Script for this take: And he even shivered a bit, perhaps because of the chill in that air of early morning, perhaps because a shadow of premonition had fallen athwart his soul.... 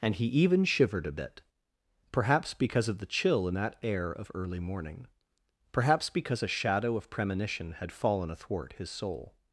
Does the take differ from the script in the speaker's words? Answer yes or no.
no